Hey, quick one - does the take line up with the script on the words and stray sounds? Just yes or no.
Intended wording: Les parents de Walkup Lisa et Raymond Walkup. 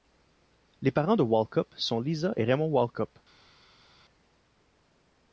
no